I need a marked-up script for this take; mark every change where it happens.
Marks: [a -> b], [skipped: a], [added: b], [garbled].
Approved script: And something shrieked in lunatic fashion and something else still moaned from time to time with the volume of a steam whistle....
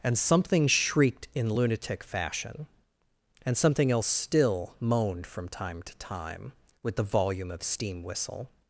And something shrieked in lunatic fashion and something else still moaned from time to time with the volume of [skipped: a] steam whistle....